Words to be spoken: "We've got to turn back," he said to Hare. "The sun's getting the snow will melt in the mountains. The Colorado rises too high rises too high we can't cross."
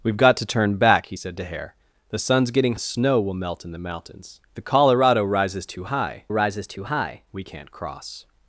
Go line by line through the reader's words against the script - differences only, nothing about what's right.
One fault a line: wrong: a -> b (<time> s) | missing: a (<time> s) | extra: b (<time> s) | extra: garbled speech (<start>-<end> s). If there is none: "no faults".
no faults